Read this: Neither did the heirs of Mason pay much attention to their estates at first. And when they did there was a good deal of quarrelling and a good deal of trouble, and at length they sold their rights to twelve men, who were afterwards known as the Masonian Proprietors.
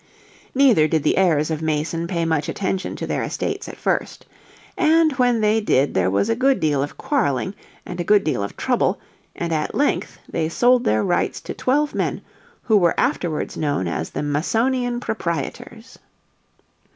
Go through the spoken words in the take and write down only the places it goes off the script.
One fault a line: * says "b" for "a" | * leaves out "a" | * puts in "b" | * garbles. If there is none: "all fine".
all fine